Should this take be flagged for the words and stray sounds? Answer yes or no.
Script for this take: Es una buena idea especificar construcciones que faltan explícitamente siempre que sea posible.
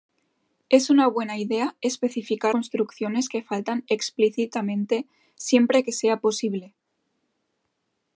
no